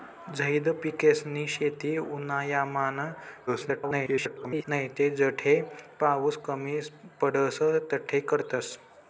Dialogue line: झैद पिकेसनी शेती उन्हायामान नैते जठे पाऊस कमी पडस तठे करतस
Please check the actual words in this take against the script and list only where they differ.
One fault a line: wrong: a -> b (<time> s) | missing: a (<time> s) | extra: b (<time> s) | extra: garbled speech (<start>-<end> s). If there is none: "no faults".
extra: garbled speech (3.5-4.6 s)